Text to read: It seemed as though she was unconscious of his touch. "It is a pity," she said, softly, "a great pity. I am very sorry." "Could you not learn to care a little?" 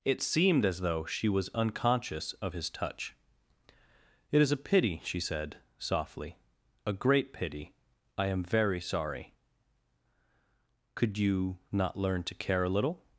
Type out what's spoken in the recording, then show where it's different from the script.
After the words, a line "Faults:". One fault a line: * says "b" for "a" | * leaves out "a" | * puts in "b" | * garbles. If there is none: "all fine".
It seemed as though she was unconscious of his touch. "It is a pity," she said, softly, "a great pity. I am very sorry." "Could you not learn to care a little?"
Faults:
all fine